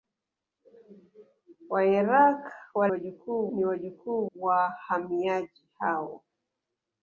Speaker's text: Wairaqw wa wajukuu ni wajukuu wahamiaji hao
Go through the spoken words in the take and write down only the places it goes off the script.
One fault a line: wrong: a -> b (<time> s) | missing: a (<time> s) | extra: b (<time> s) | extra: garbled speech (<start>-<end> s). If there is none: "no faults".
no faults